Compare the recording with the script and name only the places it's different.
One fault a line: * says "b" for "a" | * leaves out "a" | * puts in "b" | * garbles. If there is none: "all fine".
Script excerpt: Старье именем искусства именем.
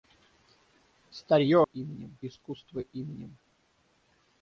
all fine